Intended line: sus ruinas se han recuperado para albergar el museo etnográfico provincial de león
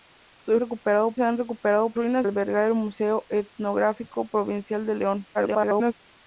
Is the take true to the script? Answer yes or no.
no